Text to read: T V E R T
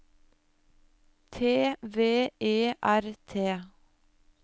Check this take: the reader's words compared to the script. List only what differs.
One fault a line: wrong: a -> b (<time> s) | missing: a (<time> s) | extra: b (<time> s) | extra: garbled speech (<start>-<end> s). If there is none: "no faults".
no faults